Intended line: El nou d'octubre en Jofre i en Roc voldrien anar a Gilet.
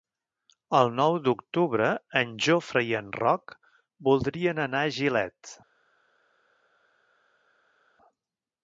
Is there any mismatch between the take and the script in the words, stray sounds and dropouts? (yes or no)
no